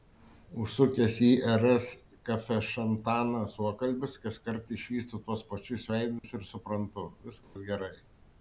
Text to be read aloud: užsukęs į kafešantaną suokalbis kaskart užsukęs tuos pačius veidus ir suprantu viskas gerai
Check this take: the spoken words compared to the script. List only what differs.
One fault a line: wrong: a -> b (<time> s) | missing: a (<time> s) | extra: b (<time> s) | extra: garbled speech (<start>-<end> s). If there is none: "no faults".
extra: rs (1.6 s)
wrong: užsukęs -> išvystu (4.8 s)